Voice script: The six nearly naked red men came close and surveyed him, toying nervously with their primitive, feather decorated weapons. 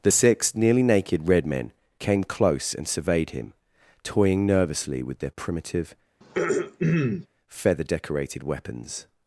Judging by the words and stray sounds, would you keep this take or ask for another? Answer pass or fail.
fail